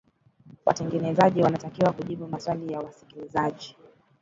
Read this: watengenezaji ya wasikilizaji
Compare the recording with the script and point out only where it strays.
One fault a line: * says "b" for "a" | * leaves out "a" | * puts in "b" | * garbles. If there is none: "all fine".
* puts in "wanatakiwa kujibu maswali"